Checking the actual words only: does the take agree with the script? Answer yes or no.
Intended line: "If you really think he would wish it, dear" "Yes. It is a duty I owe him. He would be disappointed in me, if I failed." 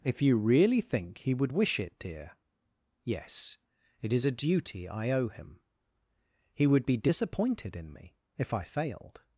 yes